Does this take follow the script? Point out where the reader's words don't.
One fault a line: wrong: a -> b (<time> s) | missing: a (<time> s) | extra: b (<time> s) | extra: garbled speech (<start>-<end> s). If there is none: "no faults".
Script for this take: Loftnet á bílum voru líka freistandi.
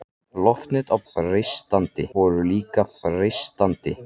wrong: bílum -> freistandi (1.1 s)